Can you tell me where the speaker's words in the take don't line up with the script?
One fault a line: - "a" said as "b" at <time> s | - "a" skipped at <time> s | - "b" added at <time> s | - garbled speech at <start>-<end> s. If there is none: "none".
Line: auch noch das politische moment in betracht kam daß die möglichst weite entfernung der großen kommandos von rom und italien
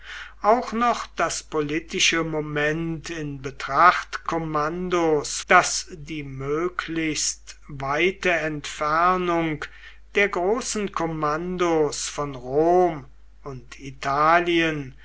- "kam" said as "kommandos" at 4.2 s